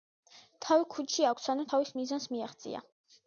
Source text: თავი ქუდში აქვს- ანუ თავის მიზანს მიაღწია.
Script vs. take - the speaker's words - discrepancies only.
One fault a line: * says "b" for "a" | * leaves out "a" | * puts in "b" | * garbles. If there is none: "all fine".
all fine